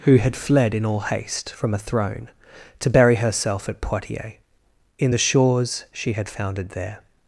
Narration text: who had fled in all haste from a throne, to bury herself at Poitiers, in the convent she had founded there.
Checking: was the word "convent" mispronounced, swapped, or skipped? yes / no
yes